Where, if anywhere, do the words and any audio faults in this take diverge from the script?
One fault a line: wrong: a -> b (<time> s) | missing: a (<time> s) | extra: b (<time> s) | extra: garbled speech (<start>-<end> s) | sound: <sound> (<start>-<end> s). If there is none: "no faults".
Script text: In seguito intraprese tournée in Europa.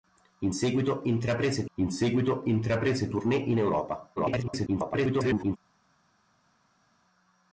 extra: in seguito intraprese (1.7 s)
extra: garbled speech (4.2-5.6 s)